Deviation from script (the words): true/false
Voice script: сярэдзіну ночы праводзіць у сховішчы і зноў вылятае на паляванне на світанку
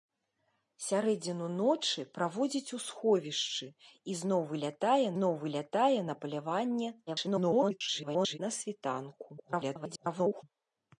true